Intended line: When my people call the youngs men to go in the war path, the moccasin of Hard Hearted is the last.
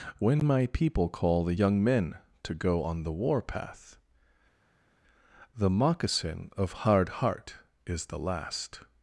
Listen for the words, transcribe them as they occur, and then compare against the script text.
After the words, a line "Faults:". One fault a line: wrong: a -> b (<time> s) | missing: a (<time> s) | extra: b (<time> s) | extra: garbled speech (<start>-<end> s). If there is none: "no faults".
When my people call the young men to go on the war path, the moccasin of Hard Heart is the last.
Faults:
wrong: youngs -> young (1.5 s)
wrong: in -> on (2.8 s)
wrong: Hearted -> Heart (7.1 s)